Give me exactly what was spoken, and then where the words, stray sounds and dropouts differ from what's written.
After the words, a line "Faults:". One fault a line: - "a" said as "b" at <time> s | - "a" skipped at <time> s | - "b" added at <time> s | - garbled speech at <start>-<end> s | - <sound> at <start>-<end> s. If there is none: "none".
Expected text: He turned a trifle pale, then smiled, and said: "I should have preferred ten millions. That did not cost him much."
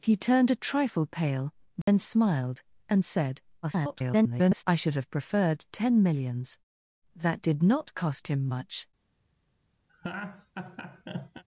He turned a trifle pale, then smiled, and said: [garbled] "I should have preferred ten millions. That did not cost him much."
Faults:
- dropout at 1.8-1.9 s
- garbled speech at 3.6-4.6 s
- laugh at 9.9-11.4 s